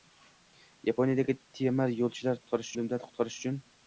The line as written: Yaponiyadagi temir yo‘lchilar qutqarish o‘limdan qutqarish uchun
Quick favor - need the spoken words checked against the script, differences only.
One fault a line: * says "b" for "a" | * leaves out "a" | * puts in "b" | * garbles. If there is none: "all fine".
all fine